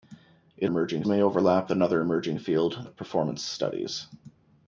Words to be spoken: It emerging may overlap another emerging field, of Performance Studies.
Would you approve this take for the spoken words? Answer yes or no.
yes